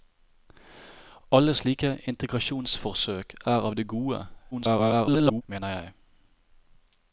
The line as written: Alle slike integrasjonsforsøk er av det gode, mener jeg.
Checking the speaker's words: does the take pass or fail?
fail